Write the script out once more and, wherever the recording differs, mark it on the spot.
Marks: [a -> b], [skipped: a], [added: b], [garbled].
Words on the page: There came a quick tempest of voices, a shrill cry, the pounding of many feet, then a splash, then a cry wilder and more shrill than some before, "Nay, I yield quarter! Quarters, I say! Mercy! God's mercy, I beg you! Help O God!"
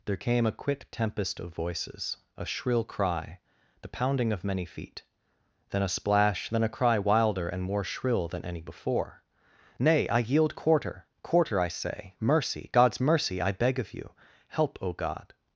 There came a quick tempest of voices, a shrill cry, the pounding of many feet, then a splash, then a cry wilder and more shrill than [some -> any] before, "Nay, I yield quarter! [Quarters, -> Quarter] I say! Mercy! God's mercy, I beg [added: of] you! Help O God!"